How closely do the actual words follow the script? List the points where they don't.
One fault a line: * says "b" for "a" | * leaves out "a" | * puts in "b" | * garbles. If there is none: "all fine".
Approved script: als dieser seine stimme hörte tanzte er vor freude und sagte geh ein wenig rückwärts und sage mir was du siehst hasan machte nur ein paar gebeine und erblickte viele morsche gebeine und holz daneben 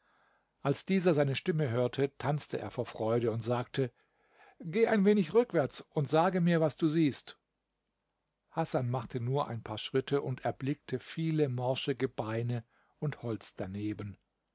* says "schritte" for "gebeine"